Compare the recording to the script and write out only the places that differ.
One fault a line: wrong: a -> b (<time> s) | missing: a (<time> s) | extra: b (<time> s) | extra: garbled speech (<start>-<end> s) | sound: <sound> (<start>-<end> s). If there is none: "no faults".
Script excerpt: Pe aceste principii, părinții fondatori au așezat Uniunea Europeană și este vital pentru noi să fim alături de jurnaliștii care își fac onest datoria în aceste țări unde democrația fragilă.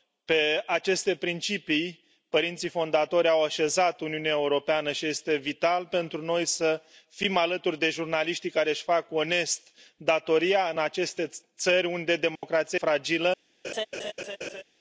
sound: dropout (12.4-12.4 s)
sound: laugh (13.6-14.6 s)